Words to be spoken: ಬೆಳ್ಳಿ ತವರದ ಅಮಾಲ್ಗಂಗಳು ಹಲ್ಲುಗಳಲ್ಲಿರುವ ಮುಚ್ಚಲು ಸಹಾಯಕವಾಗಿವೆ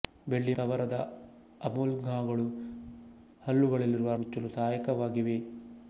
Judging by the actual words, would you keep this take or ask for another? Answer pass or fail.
pass